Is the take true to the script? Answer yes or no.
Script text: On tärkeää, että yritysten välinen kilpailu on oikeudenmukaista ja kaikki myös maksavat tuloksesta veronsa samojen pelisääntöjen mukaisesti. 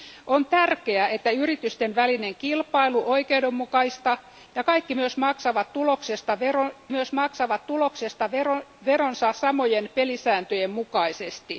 no